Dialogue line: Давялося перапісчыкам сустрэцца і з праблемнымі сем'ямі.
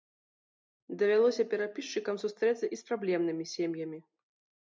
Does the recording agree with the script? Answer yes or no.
yes